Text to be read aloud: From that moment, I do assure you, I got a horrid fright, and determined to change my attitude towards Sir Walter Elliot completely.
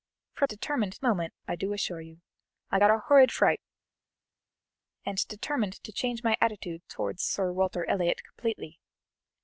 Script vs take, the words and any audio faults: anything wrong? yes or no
yes